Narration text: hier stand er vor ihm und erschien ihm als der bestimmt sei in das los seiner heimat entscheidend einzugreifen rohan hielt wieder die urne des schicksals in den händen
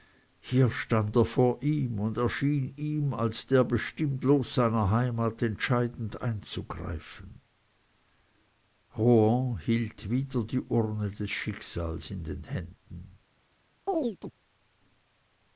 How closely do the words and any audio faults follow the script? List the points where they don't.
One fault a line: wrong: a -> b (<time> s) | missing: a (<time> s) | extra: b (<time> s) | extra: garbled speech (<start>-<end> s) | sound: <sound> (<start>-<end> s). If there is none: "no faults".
missing: sei in das (4.2 s)
sound: chirp (13.9-14.3 s)